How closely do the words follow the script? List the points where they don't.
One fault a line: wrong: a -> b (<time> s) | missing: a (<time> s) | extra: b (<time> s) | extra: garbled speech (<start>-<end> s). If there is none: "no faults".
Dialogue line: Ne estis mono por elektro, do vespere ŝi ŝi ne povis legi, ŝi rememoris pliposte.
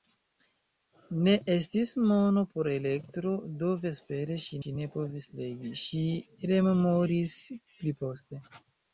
no faults